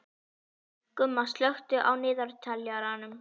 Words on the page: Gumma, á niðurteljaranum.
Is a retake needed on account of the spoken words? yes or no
yes